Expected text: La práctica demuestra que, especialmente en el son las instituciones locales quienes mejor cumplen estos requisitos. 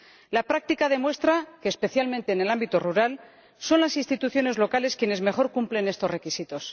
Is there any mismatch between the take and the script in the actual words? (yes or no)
yes